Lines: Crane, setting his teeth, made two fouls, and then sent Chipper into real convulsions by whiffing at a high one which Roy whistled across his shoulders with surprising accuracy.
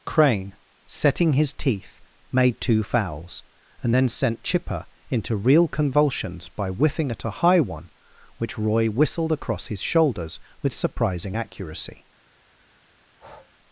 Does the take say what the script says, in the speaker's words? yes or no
yes